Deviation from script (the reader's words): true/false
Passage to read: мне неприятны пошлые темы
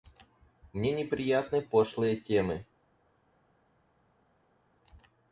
false